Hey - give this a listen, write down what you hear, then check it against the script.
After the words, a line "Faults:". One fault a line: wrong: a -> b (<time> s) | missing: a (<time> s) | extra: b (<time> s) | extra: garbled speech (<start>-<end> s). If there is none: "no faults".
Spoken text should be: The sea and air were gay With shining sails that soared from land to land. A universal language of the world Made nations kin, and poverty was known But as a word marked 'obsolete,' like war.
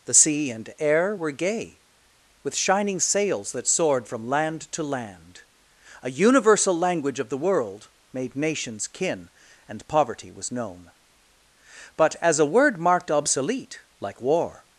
The sea and air were gay With shining sails that soared from land to land. A universal language of the world Made nations kin, and poverty was known But as a word marked 'obsolete,' like war.
Faults:
no faults